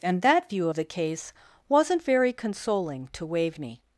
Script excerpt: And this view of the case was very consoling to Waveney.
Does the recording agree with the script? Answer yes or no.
no